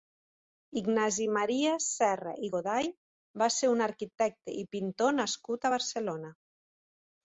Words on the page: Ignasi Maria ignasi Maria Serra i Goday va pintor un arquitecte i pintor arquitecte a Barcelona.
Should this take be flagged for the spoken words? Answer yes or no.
yes